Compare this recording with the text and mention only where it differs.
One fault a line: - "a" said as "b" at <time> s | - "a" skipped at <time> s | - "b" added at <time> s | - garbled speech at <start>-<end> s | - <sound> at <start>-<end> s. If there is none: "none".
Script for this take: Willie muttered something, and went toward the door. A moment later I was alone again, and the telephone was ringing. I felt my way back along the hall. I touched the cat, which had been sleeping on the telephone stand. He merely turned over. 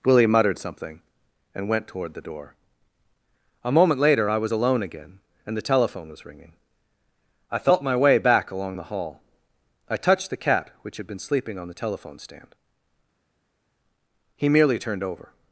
none